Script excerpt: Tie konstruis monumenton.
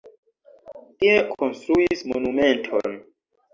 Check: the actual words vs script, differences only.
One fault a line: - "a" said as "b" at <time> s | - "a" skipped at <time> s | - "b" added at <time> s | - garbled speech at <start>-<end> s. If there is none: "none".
none